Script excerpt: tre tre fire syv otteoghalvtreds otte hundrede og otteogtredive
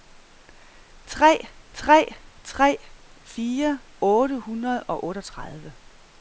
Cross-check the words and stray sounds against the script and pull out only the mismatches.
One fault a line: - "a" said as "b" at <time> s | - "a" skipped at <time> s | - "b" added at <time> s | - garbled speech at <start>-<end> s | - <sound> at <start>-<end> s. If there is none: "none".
- "tre" added at 2.4 s
- "syv otteoghalvtreds" skipped at 3.8 s